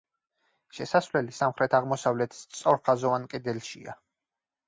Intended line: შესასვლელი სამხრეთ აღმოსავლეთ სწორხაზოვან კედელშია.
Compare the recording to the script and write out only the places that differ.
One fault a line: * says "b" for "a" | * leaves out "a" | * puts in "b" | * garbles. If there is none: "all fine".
all fine